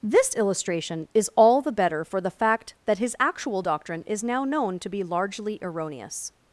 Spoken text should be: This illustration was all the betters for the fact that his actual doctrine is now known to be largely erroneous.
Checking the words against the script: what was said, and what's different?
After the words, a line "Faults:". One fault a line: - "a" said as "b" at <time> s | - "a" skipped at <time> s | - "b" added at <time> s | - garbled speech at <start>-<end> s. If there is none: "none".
This illustration is all the better for the fact that his actual doctrine is now known to be largely erroneous.
Faults:
- "was" said as "is" at 1.1 s
- "betters" said as "better" at 1.7 s